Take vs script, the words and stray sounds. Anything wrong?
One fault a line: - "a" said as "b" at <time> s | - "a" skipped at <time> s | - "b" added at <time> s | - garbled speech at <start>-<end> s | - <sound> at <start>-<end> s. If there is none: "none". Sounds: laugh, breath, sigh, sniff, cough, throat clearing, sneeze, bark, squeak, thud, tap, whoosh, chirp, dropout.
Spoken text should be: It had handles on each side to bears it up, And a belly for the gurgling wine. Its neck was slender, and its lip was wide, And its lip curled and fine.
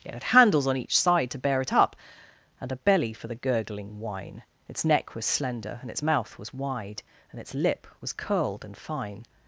- "bears" said as "bear" at 1.4 s
- "lip" said as "mouth" at 6.0 s
- "was" added at 8.0 s